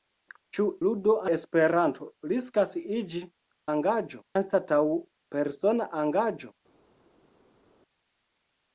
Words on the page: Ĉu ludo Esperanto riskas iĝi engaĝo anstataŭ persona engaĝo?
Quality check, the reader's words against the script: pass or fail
pass